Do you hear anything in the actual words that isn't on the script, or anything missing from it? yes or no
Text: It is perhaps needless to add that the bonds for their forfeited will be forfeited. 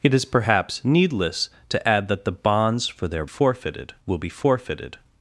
no